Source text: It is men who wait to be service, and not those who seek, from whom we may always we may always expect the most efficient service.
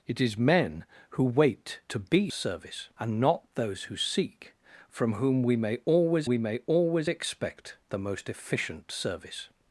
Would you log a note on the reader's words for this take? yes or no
no